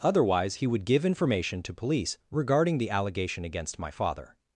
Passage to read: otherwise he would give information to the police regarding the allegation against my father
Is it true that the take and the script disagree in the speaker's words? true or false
true